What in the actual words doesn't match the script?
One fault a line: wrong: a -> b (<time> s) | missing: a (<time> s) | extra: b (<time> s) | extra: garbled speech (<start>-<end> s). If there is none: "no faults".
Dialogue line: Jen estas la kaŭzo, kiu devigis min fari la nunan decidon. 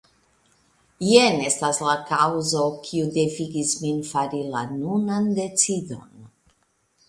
no faults